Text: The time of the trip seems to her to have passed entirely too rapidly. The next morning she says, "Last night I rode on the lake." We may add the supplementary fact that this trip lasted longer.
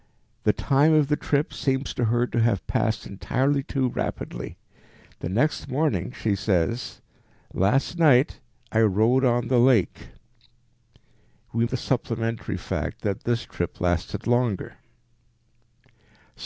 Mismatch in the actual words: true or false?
true